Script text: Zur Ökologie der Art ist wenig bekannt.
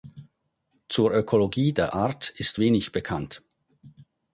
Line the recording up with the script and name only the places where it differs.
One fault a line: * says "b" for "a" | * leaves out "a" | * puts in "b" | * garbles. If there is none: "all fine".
all fine